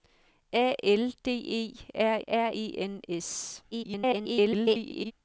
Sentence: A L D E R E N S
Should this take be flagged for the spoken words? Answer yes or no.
yes